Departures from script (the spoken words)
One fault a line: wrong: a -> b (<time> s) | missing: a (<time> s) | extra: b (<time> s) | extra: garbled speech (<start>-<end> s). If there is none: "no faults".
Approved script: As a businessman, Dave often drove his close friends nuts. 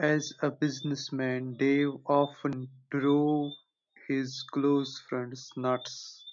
no faults